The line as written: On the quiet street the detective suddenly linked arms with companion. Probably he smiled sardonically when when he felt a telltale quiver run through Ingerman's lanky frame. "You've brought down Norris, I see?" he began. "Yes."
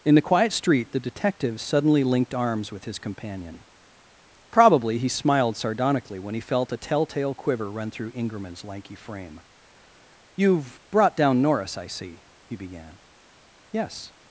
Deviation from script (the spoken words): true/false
true